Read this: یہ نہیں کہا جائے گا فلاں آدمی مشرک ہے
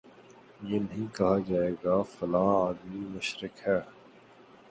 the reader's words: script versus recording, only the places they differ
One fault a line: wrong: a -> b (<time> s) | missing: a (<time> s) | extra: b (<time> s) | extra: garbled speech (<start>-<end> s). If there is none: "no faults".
no faults